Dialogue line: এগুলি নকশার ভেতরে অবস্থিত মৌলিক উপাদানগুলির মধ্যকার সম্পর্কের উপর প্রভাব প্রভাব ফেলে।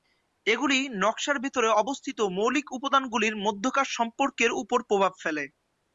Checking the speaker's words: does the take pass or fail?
fail